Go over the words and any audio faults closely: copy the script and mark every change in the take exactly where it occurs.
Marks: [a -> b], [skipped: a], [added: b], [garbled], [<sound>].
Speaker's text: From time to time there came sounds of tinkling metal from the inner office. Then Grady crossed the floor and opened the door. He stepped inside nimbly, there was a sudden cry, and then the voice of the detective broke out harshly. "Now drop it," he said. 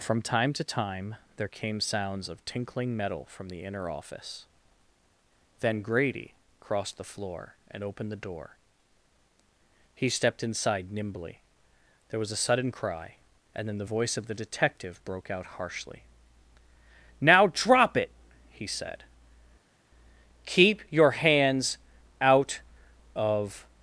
From time to time there came sounds of tinkling metal from the inner office. Then Grady crossed the floor and opened the door. He stepped inside nimbly, there was a sudden cry, and then the voice of the detective broke out harshly. "Now drop it," he said. [added: Keep your hands out of]